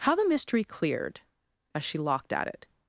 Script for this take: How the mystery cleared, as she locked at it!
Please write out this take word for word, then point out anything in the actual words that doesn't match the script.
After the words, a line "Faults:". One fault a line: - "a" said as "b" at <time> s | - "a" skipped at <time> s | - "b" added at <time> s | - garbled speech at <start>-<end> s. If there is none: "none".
How the mystery cleared, as she locked at it!
Faults:
none